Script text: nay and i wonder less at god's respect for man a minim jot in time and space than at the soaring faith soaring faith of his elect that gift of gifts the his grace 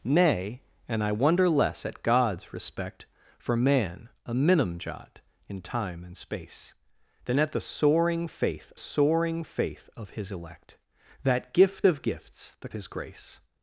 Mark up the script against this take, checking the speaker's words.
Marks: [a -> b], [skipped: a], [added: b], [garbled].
nay and i wonder less at god's respect for man a minim jot in time and space than at the soaring faith soaring faith of his elect that gift of gifts the his grace